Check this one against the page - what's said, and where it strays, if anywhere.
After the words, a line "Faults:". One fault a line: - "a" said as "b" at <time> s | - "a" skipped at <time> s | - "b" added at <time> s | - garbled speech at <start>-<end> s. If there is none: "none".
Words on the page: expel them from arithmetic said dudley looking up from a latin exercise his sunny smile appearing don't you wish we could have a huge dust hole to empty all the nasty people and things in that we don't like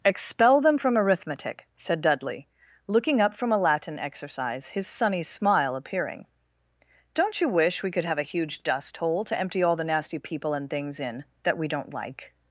expel them from arithmetic said dudley looking up from a latin exercise his sunny smile appearing don't you wish we could have a huge dust hole to empty all the nasty people and things in that we don't like
Faults:
none